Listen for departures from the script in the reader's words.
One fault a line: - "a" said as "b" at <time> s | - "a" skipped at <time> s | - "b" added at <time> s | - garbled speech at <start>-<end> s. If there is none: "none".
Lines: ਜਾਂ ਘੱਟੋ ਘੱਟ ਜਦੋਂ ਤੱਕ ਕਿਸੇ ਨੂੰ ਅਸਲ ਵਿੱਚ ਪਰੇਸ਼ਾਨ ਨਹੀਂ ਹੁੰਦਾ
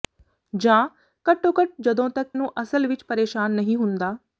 - "ਕਿਸੇ" skipped at 2.3 s